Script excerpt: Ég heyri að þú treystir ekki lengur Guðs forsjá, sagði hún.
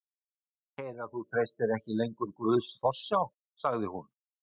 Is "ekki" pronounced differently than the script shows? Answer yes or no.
no